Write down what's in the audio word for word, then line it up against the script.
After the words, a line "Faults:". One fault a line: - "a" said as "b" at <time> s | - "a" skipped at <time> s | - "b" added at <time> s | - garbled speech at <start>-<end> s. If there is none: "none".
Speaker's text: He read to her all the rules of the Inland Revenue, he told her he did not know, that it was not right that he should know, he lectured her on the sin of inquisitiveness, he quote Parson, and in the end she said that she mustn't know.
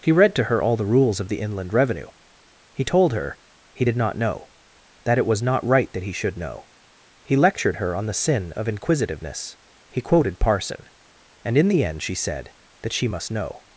He read to her all the rules of the Inland Revenue, he told her he did not know, that it was not right that he should know, he lectured her on the sin of inquisitiveness, he quoted Parson, and in the end she said that she must know.
Faults:
- "quote" said as "quoted" at 10.0 s
- "mustn't" said as "must" at 13.1 s